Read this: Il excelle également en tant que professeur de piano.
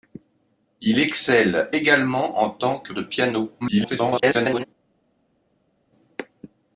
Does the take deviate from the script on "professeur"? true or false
true